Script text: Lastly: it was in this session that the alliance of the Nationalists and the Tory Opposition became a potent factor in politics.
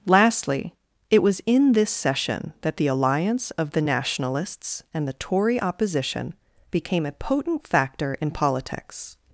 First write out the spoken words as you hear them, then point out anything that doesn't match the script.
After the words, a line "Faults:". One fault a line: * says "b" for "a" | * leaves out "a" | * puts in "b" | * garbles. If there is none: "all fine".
Lastly: it was in this session that the alliance of the Nationalists and the Tory Opposition became a potent factor in politics.
Faults:
all fine